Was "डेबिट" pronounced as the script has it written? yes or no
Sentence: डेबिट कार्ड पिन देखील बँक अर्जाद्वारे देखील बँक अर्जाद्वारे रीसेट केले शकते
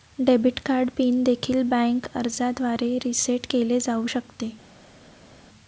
yes